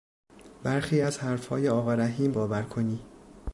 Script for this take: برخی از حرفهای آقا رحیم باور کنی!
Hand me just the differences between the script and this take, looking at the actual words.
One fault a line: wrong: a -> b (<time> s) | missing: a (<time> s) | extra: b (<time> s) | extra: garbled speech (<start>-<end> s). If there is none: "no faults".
no faults